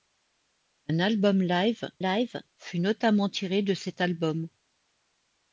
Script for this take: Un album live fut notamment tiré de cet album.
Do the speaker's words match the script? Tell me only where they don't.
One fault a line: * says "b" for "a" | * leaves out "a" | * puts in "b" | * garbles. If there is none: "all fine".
* puts in "live"